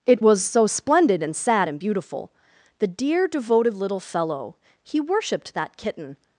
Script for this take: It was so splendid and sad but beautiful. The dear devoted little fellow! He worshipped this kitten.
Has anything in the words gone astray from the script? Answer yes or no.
yes